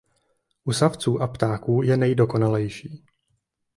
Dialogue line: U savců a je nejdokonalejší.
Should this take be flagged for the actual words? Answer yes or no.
yes